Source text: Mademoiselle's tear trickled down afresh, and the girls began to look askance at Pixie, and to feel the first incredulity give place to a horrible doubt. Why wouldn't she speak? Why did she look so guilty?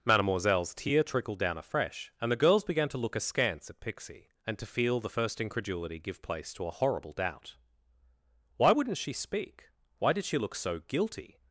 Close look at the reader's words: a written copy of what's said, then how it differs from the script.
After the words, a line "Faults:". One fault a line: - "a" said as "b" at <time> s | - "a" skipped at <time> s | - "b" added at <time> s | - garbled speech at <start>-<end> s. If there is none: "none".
Mademoiselle's tear trickled down afresh, and the girls began to look askance at Pixie, and to feel the first incredulity give place to a horrible doubt. Why wouldn't she speak? Why did she look so guilty?
Faults:
none